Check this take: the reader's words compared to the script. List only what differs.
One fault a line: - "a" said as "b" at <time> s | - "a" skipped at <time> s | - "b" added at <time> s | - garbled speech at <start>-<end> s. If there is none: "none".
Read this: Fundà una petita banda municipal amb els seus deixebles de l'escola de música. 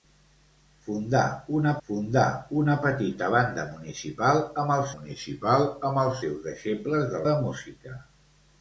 - "fundà una" added at 1.9 s
- "municipal amb els" added at 4.9 s
- "l'escola" skipped at 7.2 s